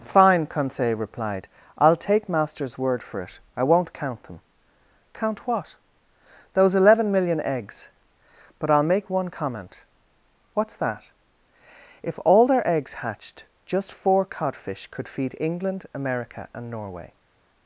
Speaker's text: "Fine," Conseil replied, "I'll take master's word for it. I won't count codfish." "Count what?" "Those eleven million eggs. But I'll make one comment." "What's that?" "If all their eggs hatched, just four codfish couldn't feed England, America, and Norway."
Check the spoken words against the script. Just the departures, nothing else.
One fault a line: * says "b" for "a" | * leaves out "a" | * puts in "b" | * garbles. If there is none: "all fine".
* says "them" for "codfish"
* says "could" for "couldn't"